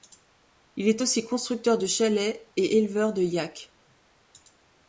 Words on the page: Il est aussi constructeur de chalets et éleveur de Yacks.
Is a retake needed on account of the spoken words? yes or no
no